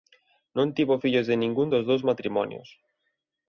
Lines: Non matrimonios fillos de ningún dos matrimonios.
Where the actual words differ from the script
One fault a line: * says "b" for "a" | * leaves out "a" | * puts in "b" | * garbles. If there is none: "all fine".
* says "tivo" for "matrimonios"
* puts in "dous"